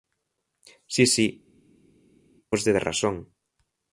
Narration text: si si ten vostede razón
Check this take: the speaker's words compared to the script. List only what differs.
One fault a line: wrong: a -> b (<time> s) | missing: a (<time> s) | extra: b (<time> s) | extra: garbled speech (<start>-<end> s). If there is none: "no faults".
missing: ten (1.3 s)